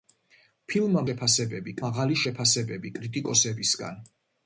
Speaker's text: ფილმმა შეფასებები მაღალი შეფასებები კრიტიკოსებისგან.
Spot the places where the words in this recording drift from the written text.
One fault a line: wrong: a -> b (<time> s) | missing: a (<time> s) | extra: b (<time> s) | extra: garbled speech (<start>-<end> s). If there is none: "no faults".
no faults